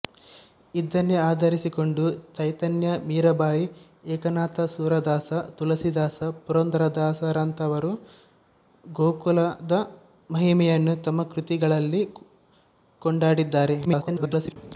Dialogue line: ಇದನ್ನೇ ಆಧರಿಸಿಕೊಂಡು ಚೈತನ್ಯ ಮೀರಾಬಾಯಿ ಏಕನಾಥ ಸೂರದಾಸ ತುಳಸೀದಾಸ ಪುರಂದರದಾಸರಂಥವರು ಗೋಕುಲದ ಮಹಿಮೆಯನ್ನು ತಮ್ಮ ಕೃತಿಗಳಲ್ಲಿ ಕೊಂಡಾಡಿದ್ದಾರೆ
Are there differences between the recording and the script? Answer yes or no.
yes